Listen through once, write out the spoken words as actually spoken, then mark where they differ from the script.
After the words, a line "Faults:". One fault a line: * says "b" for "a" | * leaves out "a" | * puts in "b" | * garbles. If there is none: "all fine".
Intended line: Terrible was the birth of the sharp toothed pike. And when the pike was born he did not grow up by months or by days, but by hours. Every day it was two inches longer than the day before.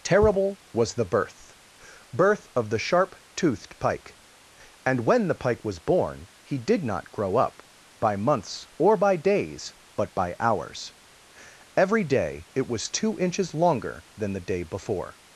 Terrible was the birth birth of the sharp toothed pike. And when the pike was born he did not grow up by months or by days, but by hours. Every day it was two inches longer than the day before.
Faults:
* puts in "birth"